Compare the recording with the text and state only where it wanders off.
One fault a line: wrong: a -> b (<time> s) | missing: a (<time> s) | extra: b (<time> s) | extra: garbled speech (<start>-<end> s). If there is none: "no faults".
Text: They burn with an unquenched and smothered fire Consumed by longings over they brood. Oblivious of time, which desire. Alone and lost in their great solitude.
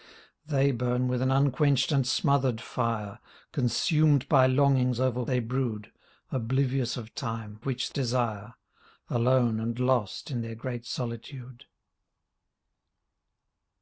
no faults